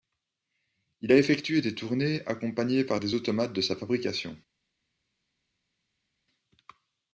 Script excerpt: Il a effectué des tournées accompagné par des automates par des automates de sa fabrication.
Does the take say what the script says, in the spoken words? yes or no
no